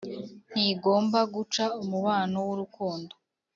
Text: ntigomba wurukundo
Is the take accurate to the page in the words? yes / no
no